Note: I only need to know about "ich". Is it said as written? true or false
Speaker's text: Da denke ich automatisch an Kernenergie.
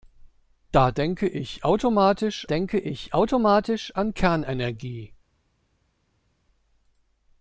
true